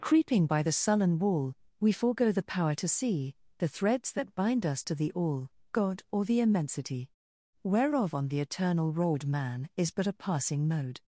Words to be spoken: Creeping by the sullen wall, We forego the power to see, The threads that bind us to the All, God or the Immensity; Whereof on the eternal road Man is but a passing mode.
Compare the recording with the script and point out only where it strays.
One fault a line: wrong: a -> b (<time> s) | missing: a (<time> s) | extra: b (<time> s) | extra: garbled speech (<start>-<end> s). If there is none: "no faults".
no faults